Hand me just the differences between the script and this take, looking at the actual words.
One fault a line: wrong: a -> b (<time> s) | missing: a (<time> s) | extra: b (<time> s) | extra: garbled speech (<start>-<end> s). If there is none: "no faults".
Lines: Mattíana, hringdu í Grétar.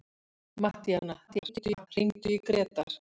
extra: garbled speech (1.3-1.9 s)